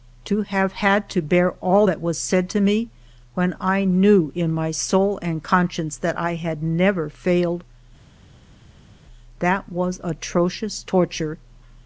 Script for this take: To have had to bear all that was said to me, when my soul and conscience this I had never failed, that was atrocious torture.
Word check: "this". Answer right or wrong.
wrong